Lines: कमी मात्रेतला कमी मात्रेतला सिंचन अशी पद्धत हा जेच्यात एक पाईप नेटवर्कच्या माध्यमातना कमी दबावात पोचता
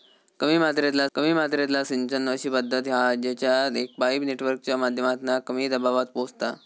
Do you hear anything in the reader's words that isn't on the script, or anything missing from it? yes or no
no